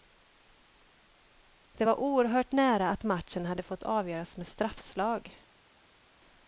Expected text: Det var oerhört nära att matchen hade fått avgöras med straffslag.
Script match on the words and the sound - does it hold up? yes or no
yes